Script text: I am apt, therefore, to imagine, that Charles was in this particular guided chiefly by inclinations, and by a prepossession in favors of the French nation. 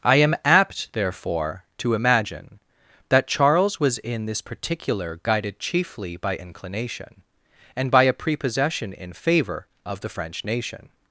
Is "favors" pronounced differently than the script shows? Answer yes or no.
yes